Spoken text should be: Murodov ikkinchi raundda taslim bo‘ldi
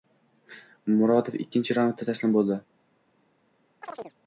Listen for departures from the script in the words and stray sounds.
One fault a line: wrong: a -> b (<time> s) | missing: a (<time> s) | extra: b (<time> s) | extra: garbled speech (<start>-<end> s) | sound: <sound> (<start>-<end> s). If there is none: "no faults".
sound: chirp (3.8-4.2 s)